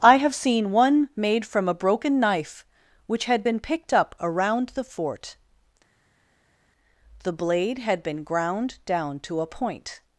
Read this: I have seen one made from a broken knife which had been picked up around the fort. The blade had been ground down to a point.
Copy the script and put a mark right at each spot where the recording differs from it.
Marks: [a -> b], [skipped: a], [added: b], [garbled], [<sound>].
I have seen one made from a broken knife which had been picked up around the fort. The blade had been ground down to a point.